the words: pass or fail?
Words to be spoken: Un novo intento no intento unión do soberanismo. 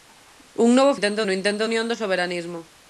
pass